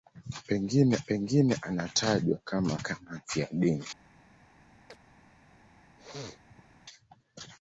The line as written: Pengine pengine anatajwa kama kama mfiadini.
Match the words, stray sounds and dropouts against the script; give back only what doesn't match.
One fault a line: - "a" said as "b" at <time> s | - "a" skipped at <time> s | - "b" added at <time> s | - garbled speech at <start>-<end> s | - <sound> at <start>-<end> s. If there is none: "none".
- chirp at 4.9-5.0 s
- sneeze at 6.0-6.7 s